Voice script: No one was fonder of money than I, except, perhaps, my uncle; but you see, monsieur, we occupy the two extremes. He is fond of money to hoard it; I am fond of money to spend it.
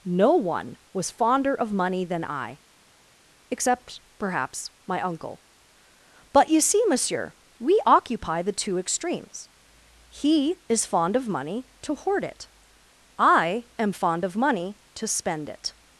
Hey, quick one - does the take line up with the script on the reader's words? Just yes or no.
yes